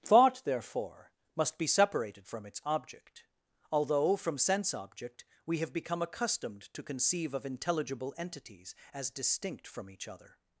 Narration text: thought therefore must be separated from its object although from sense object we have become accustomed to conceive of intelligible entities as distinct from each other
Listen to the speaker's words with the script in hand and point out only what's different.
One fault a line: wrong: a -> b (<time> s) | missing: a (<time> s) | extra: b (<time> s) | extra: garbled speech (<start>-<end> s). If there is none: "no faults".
no faults